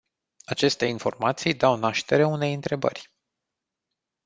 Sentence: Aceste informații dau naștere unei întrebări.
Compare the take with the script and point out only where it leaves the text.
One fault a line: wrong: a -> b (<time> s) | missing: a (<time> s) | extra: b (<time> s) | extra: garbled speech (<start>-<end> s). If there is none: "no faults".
no faults